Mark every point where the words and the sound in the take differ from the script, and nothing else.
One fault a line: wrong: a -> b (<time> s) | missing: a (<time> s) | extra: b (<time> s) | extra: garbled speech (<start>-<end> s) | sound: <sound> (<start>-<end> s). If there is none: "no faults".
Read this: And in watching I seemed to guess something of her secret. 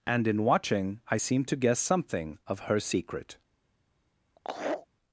sound: laugh (4.4-4.9 s)